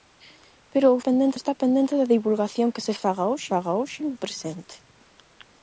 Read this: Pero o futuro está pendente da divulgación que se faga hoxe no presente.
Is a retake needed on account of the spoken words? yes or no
yes